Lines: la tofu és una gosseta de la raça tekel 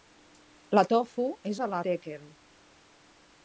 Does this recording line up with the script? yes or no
no